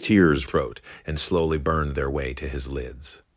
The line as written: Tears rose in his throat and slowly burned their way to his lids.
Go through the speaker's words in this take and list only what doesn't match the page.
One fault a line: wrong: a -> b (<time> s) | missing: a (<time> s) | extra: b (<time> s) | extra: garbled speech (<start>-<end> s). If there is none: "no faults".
missing: rose in his (0.5 s)